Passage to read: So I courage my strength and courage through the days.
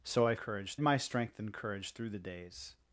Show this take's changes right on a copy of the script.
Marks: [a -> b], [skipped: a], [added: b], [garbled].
So I courage my strength and courage through the days.